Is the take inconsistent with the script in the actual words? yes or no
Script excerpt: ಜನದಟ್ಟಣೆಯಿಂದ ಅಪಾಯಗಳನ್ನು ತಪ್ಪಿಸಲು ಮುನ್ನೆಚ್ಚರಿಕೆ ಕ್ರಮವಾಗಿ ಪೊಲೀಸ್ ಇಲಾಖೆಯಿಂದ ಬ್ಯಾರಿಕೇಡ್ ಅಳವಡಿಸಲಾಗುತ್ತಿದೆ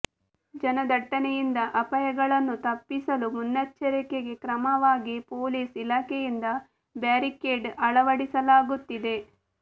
no